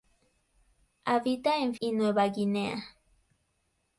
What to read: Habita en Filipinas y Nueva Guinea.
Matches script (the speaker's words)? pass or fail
fail